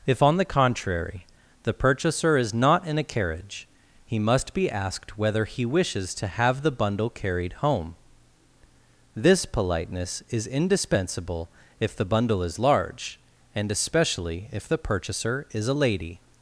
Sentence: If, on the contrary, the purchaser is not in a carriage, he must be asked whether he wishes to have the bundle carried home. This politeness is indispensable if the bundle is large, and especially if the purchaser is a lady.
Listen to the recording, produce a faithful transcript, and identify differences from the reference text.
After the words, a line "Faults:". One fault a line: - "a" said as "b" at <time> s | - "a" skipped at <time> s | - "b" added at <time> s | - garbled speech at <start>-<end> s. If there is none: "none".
If, on the contrary, the purchaser is not in a carriage, he must be asked whether he wishes to have the bundle carried home. This politeness is indispensable if the bundle is large, and especially if the purchaser is a lady.
Faults:
none